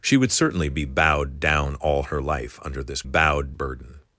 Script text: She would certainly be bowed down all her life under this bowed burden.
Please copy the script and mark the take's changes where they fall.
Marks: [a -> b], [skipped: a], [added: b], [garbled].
She would certainly be bowed down all her life under this bowed burden.